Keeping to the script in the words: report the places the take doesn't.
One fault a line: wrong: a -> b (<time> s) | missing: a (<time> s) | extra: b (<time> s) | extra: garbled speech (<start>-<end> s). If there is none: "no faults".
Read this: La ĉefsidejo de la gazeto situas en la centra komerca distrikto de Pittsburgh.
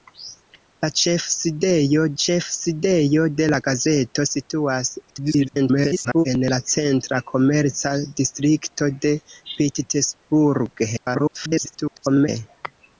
extra: ĉefsidejo (2.2 s)
extra: garbled speech (5.1-6.3 s)
extra: garbled speech (11.0-12.3 s)